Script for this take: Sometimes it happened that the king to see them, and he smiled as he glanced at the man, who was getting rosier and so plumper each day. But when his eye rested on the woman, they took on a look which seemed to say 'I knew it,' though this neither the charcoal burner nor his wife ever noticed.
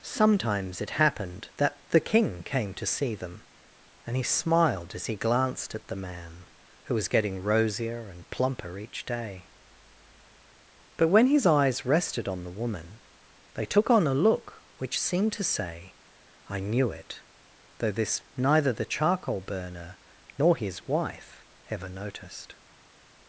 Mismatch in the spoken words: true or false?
true